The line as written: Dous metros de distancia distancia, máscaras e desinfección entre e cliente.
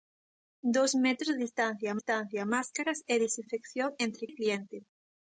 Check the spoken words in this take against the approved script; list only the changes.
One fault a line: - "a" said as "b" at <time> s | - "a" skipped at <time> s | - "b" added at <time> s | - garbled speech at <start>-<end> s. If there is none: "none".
none